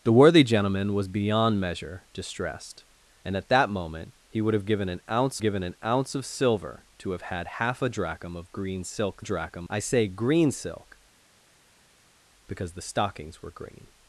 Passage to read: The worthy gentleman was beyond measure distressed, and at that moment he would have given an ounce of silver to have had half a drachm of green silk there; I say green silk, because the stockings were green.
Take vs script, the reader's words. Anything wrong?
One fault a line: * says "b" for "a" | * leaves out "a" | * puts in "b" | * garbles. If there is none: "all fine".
* puts in "given an ounce"
* says "drachm" for "there"